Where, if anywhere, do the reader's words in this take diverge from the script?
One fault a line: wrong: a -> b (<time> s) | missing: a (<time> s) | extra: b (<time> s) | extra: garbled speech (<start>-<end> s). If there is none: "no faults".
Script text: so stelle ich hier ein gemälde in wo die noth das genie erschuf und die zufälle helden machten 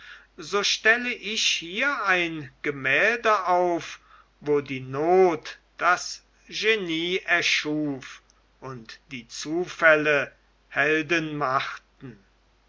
wrong: in -> auf (3.5 s)